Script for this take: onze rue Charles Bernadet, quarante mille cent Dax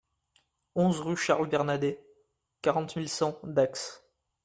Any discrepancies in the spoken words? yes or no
no